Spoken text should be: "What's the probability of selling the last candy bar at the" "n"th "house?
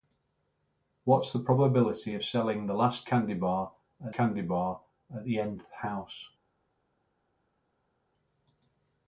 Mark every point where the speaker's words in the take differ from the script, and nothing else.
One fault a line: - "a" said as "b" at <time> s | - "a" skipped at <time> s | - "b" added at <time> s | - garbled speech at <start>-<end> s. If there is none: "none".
- "candy bar at" added at 4.1 s